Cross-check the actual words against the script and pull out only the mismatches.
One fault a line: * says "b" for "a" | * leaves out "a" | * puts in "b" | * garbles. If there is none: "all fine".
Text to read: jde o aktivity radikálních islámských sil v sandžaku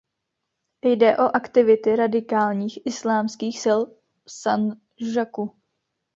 all fine